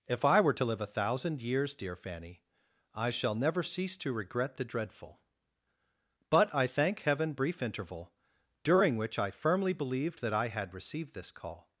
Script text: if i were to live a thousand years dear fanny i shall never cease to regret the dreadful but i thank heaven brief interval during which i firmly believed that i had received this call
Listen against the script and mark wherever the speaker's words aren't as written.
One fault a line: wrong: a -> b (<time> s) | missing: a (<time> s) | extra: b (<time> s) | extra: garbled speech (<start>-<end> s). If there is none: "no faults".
no faults